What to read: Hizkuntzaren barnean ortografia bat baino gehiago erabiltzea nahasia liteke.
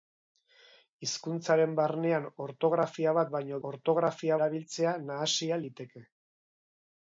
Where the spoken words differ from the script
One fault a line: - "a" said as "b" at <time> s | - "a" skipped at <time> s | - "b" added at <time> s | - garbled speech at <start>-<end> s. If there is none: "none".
- "gehiago" said as "ortografia" at 3.7 s